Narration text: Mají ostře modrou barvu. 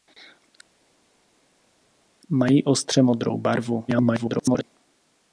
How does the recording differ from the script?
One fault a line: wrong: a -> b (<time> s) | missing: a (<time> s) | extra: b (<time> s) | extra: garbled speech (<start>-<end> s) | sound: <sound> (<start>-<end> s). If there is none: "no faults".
extra: garbled speech (3.9-4.6 s)